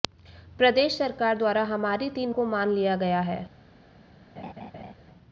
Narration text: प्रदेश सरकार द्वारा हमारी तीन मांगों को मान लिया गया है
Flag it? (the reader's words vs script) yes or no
yes